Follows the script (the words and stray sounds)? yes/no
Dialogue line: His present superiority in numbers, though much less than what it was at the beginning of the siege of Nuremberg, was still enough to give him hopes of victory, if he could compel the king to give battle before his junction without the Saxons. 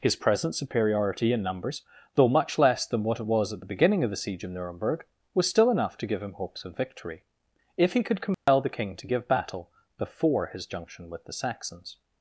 no